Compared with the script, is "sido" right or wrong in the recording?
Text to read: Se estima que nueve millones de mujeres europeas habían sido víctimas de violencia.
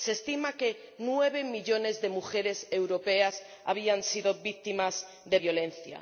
right